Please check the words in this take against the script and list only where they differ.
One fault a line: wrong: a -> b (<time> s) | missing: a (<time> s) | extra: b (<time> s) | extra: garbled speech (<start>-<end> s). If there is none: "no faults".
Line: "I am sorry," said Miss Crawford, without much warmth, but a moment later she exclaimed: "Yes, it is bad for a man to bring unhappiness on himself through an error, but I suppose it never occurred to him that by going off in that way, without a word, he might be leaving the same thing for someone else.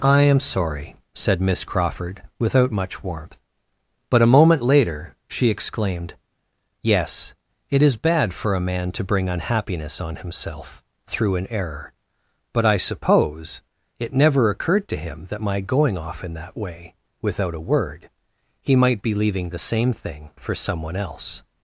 wrong: by -> my (15.4 s)